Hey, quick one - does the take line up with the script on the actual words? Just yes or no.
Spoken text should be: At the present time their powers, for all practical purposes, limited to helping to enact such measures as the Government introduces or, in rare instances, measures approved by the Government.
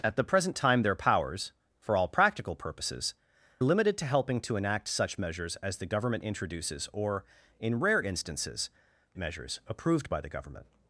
yes